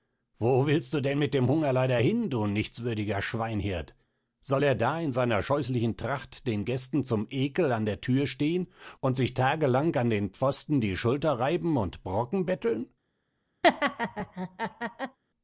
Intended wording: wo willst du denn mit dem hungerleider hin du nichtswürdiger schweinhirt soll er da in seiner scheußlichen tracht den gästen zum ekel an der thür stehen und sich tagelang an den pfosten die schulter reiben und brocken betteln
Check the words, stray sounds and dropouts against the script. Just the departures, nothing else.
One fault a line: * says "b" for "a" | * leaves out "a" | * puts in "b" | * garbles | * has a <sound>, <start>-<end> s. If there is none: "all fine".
* has a laugh, 13.6-15.2 s